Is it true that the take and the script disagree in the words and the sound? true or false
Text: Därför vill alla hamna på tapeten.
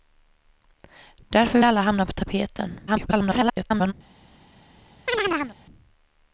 true